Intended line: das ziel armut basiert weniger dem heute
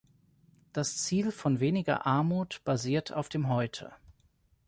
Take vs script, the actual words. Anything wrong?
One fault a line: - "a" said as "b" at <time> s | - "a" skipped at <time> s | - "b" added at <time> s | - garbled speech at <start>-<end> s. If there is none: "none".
- "von weniger" added at 1.3 s
- "weniger" said as "auf" at 3.1 s